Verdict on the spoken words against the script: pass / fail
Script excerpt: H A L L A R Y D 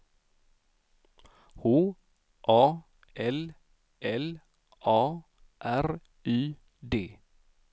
pass